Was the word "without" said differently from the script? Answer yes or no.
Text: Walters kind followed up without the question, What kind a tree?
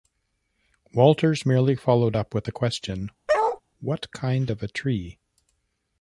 yes